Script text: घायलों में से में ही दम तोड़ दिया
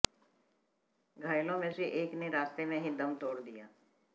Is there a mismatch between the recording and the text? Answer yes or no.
yes